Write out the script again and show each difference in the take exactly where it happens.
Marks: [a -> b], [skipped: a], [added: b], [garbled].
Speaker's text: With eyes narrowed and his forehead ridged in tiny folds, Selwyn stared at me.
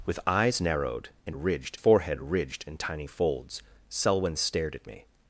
With eyes narrowed and [his -> ridged] forehead ridged in tiny folds, Selwyn stared at me.